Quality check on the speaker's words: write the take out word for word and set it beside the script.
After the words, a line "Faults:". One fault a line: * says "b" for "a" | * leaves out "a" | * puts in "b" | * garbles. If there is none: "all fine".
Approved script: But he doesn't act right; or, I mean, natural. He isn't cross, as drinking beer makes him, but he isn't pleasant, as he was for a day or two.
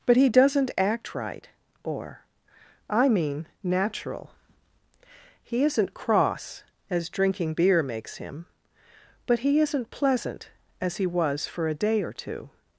But he doesn't act right; or, I mean, natural. He isn't cross, as drinking beer makes him, but he isn't pleasant, as he was for a day or two.
Faults:
all fine